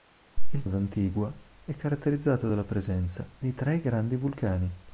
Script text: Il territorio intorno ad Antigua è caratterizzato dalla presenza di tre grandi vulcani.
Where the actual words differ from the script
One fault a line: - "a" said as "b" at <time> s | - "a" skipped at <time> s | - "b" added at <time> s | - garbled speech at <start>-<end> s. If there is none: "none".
- "territorio intorno" skipped at 0.6 s